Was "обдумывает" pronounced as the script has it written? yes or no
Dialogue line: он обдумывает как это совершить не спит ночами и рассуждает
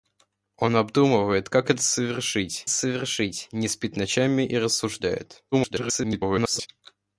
yes